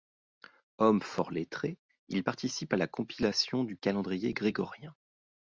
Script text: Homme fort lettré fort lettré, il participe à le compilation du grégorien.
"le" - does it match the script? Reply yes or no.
no